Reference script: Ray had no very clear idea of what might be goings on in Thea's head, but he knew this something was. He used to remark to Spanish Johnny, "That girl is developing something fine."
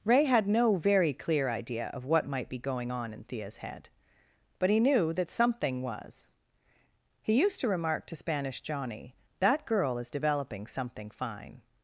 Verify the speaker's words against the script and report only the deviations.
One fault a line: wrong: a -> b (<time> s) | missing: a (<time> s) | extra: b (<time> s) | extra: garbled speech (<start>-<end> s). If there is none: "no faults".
wrong: goings -> going (2.6 s)
wrong: this -> that (5.1 s)